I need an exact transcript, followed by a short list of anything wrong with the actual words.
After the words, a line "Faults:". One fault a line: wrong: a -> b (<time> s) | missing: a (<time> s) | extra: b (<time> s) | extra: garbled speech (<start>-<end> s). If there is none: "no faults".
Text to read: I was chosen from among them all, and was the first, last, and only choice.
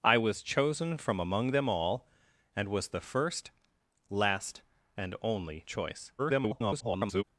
I was chosen from among them all, and was the first, last, and only choice. [garbled]
Faults:
extra: garbled speech (6.2-7.2 s)